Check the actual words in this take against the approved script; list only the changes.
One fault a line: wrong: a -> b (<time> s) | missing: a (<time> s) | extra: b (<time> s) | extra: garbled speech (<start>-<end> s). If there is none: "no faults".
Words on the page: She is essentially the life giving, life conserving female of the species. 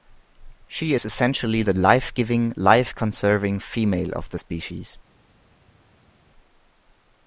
no faults